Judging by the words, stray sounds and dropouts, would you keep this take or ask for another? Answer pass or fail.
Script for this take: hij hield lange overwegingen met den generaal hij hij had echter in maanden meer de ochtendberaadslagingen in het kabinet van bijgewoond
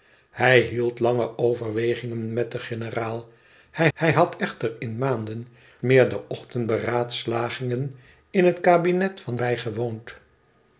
pass